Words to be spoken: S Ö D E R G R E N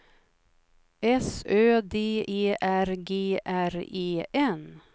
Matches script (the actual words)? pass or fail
pass